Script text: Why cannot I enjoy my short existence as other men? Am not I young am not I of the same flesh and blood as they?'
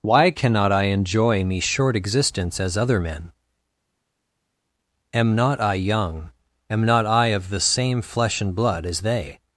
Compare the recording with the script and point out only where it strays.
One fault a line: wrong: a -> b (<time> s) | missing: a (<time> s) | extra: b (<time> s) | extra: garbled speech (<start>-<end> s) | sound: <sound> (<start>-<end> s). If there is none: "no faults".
wrong: my -> me (1.4 s)